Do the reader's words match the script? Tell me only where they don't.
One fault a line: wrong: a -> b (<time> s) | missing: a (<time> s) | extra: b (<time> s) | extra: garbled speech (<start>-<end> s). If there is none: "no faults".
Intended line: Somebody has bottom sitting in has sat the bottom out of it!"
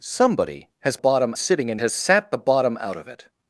no faults